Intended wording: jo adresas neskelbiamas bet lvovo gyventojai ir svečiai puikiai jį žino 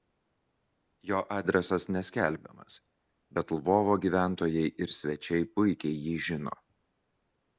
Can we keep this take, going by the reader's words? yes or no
yes